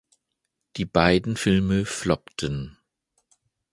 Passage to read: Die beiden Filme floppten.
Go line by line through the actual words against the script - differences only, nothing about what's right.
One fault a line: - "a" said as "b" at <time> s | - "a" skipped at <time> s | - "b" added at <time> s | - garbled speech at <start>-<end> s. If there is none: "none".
none